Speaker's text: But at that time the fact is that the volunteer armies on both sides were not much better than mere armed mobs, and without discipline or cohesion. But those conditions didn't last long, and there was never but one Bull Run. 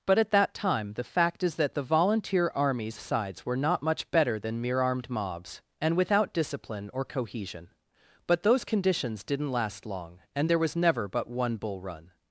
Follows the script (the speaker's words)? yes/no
no